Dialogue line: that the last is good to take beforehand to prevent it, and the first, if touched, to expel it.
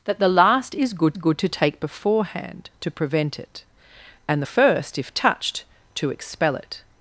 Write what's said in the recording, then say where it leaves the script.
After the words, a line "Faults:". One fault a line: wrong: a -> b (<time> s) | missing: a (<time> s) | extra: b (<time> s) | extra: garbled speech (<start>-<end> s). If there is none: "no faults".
that the last is good good to take beforehand to prevent it, and the first, if touched, to expel it.
Faults:
extra: good (1.2 s)